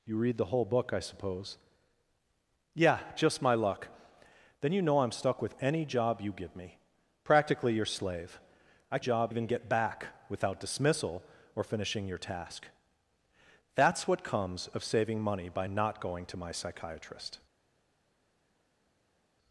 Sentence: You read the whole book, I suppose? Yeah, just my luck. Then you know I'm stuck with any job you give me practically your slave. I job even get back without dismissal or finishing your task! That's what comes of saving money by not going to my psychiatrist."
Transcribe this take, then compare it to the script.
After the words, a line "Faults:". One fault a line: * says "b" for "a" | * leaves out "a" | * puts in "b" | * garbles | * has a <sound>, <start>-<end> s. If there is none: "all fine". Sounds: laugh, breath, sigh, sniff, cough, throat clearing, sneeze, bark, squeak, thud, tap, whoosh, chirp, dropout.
You read the whole book, I suppose? Yeah, just my luck. Then you know I'm stuck with any job you give me practically your slave. I job even get back without dismissal or finishing your task! That's what comes of saving money by not going to my psychiatrist."
Faults:
all fine